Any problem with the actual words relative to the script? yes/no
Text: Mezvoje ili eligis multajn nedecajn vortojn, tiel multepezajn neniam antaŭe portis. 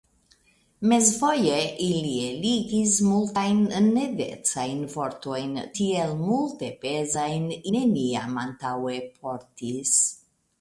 no